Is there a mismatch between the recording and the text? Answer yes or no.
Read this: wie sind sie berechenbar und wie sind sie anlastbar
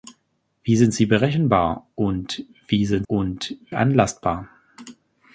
yes